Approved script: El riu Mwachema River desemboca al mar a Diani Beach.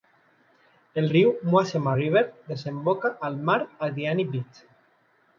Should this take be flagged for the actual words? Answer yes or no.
no